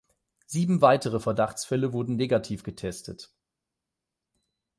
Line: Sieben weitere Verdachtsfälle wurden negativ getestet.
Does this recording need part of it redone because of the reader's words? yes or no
no